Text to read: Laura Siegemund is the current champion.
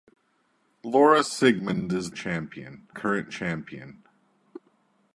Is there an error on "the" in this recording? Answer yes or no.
yes